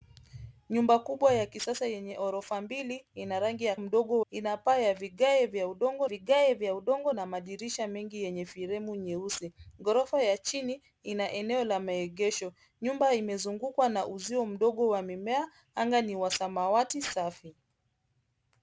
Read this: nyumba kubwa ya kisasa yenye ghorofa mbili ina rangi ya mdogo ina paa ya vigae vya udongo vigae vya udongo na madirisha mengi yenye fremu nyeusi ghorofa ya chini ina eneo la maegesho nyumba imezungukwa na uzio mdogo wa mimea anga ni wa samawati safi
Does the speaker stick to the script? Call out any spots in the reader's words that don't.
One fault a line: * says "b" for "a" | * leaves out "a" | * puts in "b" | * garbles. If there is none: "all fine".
all fine